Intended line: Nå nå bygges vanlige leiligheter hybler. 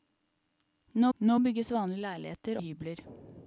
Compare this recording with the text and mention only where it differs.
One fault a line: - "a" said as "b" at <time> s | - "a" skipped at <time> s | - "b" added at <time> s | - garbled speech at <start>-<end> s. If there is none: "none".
none